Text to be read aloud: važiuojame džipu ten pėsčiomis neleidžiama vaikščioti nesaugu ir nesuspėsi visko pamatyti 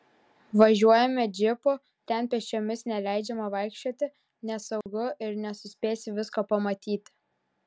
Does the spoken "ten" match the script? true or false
true